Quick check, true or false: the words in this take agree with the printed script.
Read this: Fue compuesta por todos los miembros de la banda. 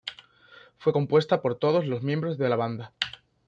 true